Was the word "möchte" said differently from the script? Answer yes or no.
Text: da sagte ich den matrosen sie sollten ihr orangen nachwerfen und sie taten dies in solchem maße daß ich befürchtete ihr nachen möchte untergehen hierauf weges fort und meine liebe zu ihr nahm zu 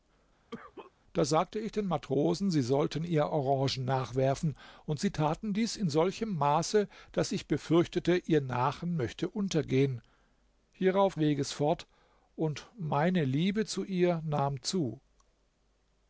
no